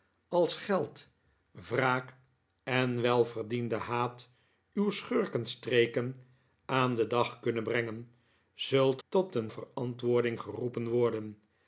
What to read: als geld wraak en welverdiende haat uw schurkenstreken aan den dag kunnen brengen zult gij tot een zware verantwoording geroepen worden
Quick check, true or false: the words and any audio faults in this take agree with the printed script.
false